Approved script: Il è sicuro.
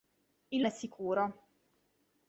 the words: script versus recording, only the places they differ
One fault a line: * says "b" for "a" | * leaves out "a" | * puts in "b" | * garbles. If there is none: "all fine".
all fine